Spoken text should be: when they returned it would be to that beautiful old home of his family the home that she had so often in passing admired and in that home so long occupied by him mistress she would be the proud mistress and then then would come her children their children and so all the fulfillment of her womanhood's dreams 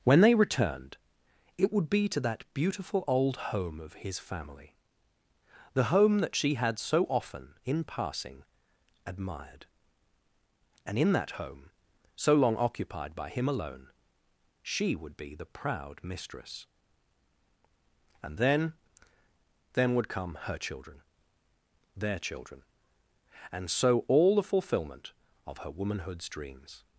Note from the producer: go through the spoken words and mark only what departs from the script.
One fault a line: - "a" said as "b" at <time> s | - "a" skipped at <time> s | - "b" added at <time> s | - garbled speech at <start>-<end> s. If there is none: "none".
- "mistress" said as "alone" at 13.5 s